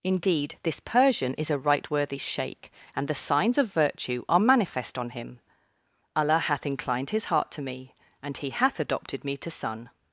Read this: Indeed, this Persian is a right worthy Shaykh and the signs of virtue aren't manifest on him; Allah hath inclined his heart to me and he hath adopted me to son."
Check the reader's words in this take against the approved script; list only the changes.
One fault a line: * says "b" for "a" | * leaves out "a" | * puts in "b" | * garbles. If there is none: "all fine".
* says "are" for "aren't"